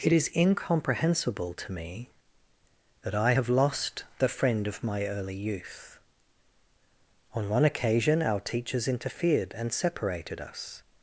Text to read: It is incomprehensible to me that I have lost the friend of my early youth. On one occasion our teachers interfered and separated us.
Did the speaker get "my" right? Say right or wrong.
right